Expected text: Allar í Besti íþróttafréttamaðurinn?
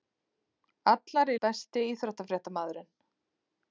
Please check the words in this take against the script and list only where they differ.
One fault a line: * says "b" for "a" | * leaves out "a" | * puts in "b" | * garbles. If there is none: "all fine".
all fine